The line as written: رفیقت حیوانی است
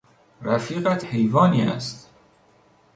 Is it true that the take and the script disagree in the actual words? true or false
false